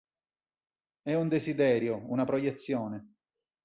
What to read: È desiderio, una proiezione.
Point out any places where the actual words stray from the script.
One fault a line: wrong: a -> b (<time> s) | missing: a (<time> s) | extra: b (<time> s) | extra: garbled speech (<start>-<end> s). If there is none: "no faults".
extra: un (1.1 s)